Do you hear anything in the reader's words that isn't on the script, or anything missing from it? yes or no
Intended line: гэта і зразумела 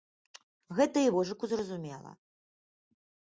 yes